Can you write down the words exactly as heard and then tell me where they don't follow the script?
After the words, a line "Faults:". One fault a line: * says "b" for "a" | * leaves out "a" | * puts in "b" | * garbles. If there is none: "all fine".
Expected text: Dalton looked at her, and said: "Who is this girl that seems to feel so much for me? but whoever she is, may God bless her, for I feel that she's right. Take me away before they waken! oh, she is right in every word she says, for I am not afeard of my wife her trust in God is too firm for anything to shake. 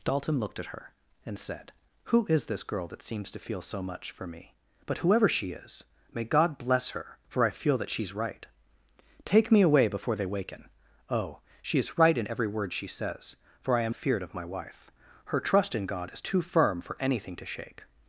Dalton looked at her, and said: "Who is this girl that seems to feel so much for me? but whoever she is, may God bless her, for I feel that she's right. Take me away before they waken! oh, she is right in every word she says, for I am afeard of my wife her trust in God is too firm for anything to shake.
Faults:
* leaves out "not"